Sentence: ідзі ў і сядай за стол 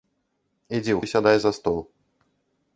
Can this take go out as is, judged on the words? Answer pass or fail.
pass